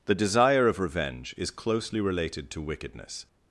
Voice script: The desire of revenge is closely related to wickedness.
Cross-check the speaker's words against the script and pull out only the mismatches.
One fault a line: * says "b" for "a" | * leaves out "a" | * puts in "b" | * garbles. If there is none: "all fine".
all fine